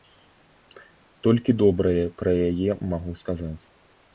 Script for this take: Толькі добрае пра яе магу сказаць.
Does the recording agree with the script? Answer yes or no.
yes